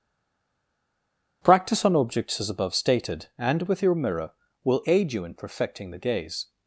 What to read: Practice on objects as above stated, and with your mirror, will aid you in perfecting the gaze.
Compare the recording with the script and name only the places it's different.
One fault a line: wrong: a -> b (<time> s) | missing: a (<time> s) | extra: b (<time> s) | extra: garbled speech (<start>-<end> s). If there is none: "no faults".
no faults